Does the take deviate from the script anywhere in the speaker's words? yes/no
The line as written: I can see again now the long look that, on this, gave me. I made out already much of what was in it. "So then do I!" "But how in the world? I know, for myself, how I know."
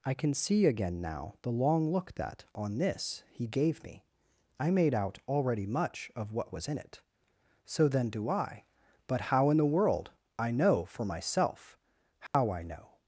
yes